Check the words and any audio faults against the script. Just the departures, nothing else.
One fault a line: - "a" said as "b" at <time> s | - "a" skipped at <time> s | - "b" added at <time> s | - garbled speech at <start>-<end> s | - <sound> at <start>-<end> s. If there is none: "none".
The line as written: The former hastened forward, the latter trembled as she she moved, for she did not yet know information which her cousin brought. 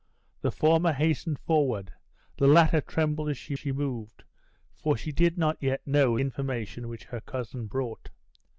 none